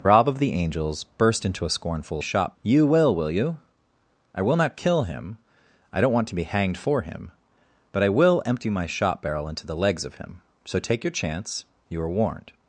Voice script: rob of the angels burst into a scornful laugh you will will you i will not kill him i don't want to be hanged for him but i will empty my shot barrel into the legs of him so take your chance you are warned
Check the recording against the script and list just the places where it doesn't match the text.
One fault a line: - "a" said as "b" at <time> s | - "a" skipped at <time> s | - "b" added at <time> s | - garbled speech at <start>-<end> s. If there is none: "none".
- "laugh" said as "shot" at 2.2 s